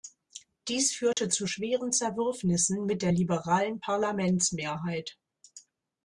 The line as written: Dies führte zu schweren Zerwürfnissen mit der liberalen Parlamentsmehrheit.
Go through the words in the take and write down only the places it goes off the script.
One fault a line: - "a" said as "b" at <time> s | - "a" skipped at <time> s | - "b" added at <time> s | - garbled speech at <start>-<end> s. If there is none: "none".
none